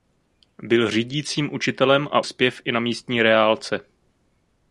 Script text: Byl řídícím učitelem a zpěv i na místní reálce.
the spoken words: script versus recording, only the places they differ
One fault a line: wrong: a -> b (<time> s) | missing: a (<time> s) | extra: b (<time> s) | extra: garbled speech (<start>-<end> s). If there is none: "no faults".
no faults